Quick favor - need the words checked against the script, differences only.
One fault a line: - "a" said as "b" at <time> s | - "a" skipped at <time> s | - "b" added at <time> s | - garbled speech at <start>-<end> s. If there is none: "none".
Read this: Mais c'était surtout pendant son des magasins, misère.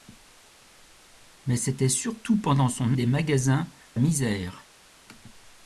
none